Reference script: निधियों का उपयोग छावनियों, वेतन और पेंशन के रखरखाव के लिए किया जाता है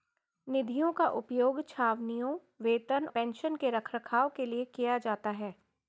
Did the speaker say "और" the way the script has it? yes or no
no